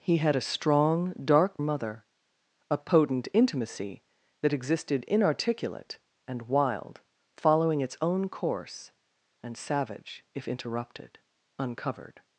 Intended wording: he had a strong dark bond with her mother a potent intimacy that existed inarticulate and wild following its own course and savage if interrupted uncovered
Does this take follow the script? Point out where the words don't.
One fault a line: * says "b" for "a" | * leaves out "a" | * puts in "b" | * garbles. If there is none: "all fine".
* leaves out "bond with her"